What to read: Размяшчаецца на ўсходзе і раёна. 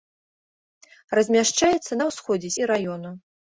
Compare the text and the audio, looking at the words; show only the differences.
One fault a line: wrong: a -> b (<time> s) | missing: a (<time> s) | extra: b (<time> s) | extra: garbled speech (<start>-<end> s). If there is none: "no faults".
no faults